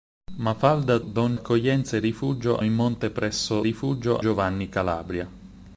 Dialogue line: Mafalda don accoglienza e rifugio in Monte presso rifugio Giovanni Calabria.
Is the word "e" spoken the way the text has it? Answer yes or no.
yes